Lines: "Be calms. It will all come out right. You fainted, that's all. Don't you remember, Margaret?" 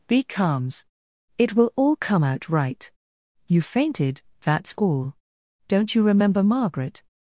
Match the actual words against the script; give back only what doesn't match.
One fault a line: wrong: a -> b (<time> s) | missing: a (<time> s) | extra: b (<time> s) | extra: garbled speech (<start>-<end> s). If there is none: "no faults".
no faults